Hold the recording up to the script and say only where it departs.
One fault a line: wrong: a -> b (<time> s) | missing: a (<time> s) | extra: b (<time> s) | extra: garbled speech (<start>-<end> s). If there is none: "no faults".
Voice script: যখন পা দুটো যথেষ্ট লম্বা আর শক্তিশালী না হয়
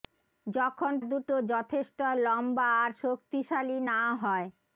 missing: পা (0.9 s)